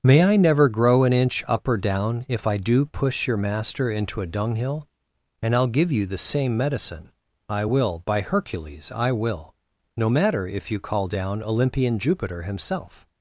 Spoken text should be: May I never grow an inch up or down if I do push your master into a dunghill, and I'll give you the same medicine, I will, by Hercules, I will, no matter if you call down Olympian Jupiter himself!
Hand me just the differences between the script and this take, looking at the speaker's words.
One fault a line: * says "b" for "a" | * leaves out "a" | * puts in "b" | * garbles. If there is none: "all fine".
all fine